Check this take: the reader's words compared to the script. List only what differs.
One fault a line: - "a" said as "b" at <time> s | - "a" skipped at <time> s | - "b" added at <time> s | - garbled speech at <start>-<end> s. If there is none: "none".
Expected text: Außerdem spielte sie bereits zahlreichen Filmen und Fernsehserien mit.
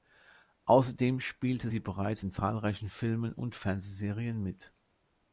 - "in" added at 2.2 s